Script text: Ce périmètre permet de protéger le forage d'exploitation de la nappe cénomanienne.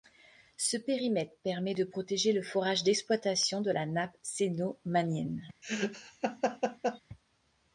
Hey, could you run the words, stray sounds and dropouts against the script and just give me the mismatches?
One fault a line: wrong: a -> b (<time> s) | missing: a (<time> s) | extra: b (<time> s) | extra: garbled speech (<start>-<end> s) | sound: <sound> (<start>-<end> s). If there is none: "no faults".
sound: laugh (5.6-7.0 s)